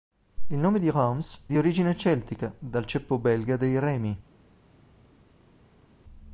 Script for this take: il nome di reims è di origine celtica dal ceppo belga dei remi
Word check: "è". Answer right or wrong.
wrong